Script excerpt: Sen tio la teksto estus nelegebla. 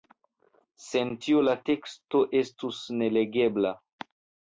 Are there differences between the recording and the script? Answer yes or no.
no